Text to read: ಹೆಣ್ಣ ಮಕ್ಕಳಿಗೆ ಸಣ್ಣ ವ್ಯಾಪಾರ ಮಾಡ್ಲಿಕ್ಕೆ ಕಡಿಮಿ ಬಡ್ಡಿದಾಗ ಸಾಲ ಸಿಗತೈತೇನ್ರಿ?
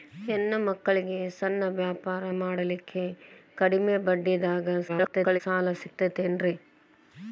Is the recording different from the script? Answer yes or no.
yes